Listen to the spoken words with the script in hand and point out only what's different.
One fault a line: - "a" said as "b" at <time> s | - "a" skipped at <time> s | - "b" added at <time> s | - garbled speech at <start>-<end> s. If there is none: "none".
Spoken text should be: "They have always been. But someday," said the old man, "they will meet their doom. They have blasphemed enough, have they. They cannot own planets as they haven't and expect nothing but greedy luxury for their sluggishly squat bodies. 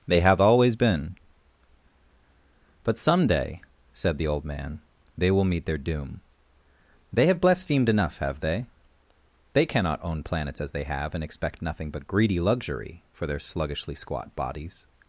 - "haven't" said as "have" at 10.8 s